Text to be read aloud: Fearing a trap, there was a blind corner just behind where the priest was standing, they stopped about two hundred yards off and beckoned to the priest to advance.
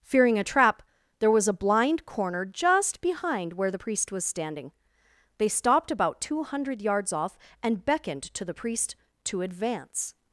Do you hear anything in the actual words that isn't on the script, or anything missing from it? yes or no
no